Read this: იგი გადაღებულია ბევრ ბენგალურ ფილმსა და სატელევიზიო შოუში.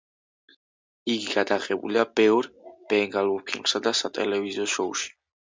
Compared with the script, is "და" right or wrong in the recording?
right